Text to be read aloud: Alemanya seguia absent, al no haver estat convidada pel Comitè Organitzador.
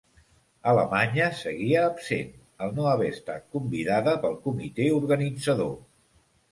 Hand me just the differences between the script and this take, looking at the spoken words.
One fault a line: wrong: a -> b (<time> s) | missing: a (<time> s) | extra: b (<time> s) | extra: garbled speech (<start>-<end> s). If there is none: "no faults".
no faults